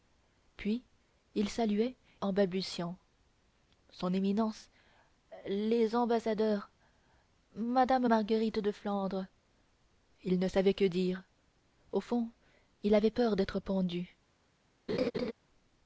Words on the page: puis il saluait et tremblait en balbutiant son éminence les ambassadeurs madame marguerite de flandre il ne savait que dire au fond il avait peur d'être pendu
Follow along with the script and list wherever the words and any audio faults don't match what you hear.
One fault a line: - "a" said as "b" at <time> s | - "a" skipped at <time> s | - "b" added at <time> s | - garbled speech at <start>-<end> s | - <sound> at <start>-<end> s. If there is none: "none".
- "et tremblait" skipped at 1.9 s
- laugh at 14.9-15.3 s